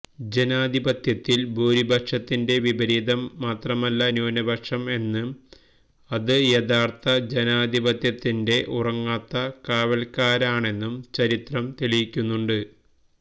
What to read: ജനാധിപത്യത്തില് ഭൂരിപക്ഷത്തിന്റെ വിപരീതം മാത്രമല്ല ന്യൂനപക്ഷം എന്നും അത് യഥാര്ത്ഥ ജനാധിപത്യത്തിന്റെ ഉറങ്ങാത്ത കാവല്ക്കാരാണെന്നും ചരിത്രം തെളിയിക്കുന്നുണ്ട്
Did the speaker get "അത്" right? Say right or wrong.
right